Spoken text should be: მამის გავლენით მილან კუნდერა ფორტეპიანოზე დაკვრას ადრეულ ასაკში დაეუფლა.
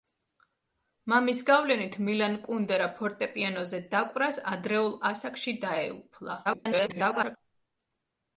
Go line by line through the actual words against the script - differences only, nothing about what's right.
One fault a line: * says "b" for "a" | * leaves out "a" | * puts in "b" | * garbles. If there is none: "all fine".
* garbles